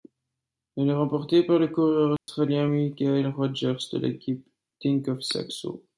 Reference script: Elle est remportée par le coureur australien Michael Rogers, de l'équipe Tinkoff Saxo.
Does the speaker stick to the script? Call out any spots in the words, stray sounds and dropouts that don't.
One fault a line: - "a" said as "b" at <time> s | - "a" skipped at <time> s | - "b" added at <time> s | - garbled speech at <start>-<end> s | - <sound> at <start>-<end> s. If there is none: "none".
- dropout at 2.2-2.3 s